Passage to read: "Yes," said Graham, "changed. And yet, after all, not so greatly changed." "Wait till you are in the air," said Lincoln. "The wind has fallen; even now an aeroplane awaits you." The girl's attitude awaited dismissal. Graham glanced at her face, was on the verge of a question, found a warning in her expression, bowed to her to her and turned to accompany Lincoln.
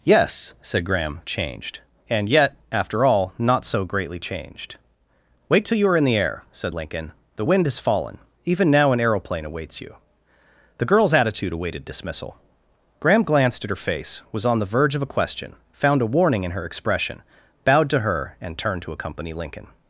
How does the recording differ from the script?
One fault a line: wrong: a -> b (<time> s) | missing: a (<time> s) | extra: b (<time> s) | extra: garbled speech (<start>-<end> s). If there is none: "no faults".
missing: to her (18.4 s)